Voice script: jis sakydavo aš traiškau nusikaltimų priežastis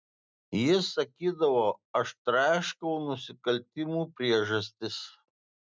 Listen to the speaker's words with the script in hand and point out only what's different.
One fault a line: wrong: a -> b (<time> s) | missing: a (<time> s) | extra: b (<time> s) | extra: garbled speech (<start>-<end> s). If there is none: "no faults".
no faults